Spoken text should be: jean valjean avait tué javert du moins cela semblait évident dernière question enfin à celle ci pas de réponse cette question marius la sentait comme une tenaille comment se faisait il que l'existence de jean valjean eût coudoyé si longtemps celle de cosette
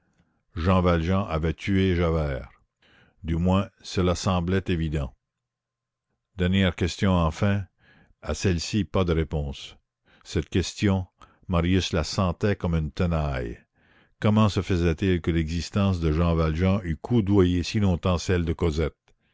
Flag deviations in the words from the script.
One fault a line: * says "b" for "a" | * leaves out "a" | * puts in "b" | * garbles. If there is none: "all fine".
all fine